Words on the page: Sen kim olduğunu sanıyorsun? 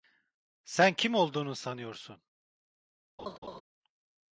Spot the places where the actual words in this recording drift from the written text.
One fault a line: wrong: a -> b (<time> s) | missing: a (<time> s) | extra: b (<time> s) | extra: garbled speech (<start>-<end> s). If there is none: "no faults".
no faults